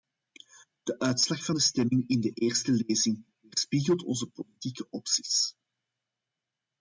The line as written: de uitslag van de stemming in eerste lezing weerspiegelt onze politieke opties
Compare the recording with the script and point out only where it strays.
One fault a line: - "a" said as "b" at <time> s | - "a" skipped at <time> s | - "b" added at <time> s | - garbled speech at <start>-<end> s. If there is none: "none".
- "de" added at 2.2 s